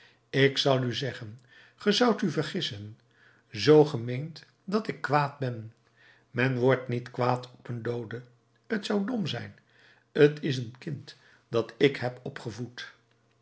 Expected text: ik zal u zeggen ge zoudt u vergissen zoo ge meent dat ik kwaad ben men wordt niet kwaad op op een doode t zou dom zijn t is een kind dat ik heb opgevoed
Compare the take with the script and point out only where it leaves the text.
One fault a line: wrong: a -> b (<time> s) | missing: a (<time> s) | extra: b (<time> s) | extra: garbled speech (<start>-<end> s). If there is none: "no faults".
no faults